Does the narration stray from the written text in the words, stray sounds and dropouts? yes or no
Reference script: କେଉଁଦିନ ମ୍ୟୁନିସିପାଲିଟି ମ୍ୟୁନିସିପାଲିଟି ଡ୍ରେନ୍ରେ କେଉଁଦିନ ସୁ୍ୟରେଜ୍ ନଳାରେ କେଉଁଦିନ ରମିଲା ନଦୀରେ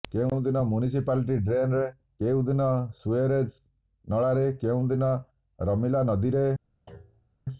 yes